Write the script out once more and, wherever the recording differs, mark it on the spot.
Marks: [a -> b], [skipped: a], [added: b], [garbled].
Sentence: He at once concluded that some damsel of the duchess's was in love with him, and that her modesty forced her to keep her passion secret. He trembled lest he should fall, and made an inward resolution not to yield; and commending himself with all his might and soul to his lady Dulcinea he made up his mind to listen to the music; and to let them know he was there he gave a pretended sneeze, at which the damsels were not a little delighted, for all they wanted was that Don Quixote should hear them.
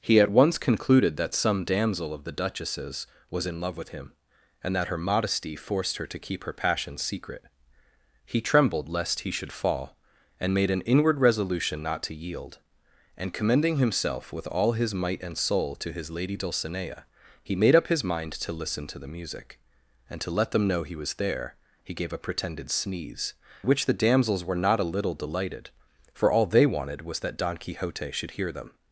He at once concluded that some damsel of the duchess's was in love with him, and that her modesty forced her to keep her passion secret. He trembled lest he should fall, and made an inward resolution not to yield; and commending himself with all his might and soul to his lady Dulcinea he made up his mind to listen to the music; and to let them know he was there he gave a pretended sneeze, [skipped: at] which the damsels were not a little delighted, for all they wanted was that Don Quixote should hear them.